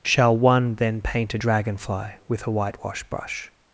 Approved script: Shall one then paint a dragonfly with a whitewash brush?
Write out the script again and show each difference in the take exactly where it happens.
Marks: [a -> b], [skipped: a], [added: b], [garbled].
Shall one then paint a dragonfly with a whitewash brush?